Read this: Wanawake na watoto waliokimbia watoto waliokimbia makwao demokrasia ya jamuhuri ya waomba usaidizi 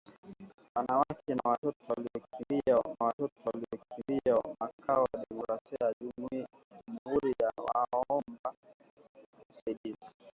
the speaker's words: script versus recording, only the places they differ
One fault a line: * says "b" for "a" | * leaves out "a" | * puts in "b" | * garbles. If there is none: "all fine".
all fine